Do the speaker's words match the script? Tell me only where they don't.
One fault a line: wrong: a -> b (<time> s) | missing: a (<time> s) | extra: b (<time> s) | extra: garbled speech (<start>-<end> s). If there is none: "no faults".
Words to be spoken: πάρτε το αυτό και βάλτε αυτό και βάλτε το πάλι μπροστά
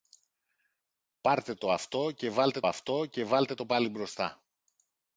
no faults